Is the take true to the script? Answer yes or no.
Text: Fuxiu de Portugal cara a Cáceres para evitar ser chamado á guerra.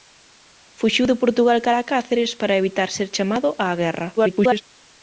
no